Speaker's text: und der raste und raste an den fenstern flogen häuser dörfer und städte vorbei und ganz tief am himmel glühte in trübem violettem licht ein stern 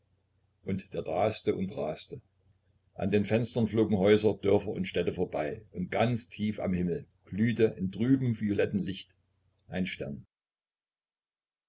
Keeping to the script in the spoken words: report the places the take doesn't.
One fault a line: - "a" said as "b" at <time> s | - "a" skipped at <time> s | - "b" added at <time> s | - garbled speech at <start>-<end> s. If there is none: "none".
none